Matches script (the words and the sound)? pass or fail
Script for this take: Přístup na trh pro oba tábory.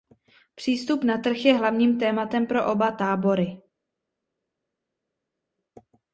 fail